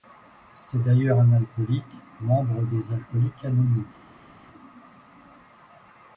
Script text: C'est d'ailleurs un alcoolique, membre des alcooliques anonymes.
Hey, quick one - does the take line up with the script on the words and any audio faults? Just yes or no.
yes